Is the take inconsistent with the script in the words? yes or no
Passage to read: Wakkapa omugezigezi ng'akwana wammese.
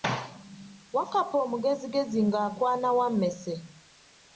no